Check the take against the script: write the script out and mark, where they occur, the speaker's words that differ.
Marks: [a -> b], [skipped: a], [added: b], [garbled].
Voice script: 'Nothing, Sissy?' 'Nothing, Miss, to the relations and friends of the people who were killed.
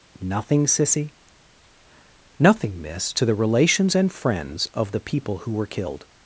'Nothing, Sissy?' 'Nothing, Miss, to the relations and friends of the people who were killed.